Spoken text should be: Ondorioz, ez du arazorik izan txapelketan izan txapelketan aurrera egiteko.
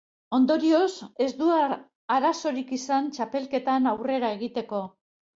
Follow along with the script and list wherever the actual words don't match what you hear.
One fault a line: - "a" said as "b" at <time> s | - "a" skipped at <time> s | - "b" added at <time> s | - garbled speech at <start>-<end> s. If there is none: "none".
- "izan txapelketan" skipped at 3.9 s